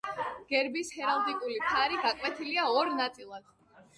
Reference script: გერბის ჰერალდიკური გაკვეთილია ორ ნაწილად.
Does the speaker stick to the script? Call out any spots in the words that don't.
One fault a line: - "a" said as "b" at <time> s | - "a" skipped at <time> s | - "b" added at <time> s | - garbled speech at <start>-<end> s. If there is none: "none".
- "ფარი" added at 1.7 s